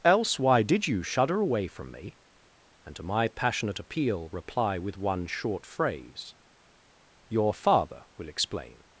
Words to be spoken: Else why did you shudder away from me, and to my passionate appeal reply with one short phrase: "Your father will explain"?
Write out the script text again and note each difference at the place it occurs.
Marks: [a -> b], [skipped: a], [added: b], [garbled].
Else why did you shudder away from me, and to my passionate appeal reply with one short phrase: "Your father will explain"?